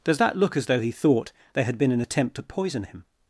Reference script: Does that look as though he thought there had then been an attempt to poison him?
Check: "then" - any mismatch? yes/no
yes